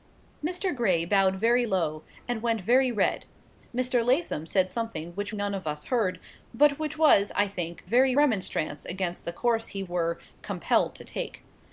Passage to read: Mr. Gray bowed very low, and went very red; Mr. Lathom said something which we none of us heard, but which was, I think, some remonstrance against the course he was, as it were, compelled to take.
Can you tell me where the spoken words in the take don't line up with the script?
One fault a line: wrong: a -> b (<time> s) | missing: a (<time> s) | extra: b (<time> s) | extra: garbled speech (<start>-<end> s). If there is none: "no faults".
missing: we (5.4 s)
wrong: some -> very (7.9 s)
missing: was as it (9.8 s)